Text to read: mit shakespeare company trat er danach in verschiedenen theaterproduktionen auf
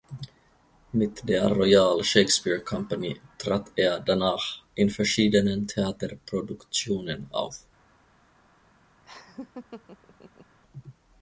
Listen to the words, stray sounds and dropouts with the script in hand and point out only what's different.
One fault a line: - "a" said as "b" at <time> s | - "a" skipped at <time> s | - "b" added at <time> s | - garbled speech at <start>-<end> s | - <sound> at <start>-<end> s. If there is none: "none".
- "der royal" added at 1.3 s
- laugh at 9.0-10.6 s